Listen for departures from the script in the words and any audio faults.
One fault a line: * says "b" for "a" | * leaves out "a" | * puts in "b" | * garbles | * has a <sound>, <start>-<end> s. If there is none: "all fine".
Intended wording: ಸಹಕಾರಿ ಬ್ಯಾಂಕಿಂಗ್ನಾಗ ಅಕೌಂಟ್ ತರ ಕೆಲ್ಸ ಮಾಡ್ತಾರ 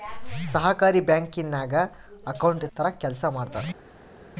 all fine